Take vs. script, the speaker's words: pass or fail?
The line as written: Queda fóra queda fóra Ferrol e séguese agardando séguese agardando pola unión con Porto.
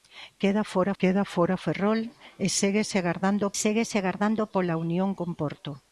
pass